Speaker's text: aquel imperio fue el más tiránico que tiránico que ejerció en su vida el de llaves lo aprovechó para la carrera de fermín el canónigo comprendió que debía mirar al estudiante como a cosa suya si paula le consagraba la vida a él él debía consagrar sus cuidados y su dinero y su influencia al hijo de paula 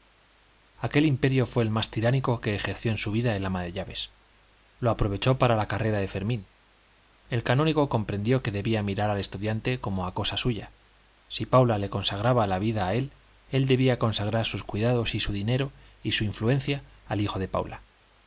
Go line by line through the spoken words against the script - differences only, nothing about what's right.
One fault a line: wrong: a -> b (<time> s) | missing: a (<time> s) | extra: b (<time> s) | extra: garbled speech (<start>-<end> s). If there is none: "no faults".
missing: tiránico que (2.5 s)
extra: ama (3.5 s)